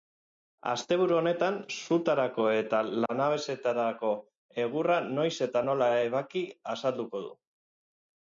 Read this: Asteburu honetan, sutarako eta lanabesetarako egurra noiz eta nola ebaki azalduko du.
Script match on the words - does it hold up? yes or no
yes